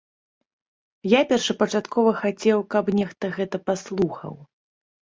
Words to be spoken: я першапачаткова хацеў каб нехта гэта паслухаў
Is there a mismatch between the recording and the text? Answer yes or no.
no